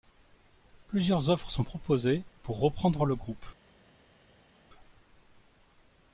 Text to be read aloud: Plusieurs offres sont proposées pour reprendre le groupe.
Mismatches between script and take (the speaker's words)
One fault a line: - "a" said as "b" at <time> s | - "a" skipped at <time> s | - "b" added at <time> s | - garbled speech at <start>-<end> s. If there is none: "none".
none